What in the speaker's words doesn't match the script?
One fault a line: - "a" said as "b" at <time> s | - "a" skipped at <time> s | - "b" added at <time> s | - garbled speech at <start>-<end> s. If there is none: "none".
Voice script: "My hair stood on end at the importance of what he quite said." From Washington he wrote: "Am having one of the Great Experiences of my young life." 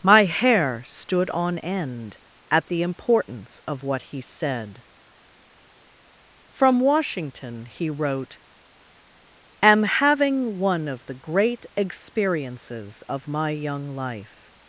- "quite" skipped at 4.2 s